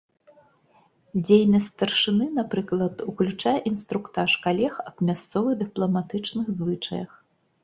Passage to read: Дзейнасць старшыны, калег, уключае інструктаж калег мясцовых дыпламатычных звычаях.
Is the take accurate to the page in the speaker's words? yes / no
no